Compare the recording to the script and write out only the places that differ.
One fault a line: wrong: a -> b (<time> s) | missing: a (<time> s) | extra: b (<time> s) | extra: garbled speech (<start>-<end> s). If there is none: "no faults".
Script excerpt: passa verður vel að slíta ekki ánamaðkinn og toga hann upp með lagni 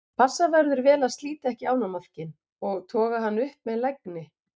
no faults